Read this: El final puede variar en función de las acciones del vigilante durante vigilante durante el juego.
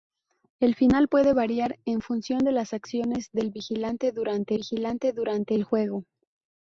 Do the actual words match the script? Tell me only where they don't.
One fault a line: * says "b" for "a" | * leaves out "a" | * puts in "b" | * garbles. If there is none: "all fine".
all fine